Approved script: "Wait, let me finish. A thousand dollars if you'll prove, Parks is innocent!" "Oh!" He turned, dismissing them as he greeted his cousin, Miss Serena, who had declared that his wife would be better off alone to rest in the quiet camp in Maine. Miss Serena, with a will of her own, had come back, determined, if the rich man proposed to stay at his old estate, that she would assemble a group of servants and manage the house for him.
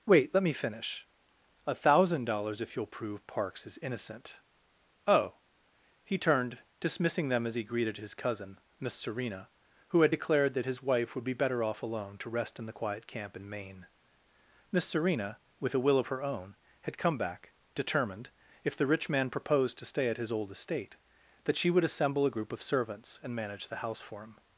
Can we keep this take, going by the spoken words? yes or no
yes